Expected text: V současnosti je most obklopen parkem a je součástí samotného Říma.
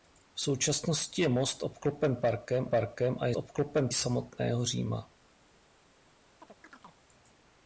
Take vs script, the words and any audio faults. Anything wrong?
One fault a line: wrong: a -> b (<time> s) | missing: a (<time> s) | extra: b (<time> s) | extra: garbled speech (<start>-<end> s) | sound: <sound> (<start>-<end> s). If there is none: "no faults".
extra: parkem (2.6 s)
wrong: součástí -> obklopen (3.4 s)
sound: chirp (6.4-7.0 s)